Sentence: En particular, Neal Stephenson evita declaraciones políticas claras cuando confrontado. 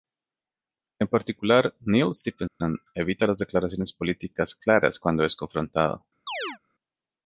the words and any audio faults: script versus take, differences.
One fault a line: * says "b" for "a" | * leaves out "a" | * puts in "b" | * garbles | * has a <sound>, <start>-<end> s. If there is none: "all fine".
* has a dropout, 2.5-2.6 s
* puts in "las"
* puts in "es"
* has a chirp, 6.3-6.6 s